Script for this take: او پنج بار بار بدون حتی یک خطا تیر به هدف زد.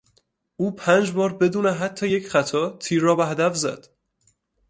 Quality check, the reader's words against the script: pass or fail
fail